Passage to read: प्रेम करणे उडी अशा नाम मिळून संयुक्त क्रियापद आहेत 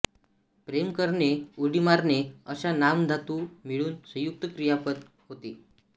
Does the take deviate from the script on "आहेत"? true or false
true